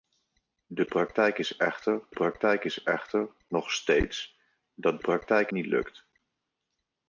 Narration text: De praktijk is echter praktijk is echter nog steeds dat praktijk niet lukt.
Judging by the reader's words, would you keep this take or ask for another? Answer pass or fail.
pass